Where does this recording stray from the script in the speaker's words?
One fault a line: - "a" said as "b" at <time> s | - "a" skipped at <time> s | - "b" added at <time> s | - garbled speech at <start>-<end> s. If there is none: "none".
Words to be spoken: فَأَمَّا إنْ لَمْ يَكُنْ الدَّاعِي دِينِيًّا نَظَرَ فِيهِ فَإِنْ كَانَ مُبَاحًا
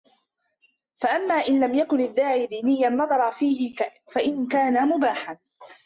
none